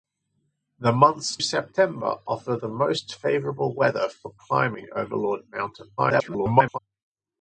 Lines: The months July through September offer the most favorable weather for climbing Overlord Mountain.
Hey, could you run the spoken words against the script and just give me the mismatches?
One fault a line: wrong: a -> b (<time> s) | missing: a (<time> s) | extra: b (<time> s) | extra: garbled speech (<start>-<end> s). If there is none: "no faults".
missing: July through (1.4 s)
extra: garbled speech (6.0-6.8 s)